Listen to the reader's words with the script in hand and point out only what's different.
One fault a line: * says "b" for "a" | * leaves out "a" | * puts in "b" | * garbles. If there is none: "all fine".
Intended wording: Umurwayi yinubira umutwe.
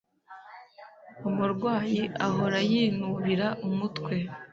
* puts in "ahora"